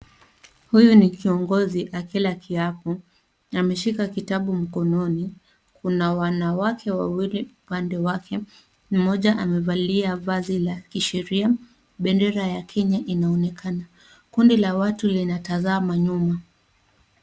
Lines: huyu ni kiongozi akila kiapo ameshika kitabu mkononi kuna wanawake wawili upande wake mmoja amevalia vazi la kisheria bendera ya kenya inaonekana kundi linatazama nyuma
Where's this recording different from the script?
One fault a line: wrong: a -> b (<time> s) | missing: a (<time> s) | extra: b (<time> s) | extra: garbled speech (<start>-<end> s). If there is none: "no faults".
extra: la watu (14.6 s)